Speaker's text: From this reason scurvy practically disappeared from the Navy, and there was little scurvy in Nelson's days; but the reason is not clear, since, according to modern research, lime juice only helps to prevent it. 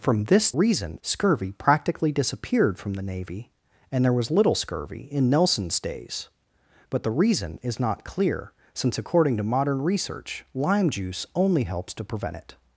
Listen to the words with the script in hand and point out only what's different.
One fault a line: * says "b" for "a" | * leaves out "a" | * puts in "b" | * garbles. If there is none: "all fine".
all fine